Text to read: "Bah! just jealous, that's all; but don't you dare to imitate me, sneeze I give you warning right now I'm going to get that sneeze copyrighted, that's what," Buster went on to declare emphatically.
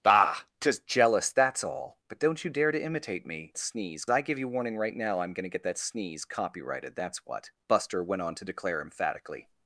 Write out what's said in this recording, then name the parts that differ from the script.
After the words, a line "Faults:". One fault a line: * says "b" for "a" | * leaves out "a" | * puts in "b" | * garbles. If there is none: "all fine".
"Bah! just jealous, that's all; but don't you dare to imitate me, sneeze I give you warning right now I'm going to get that sneeze copyrighted, that's what," Buster went on to declare emphatically.
Faults:
all fine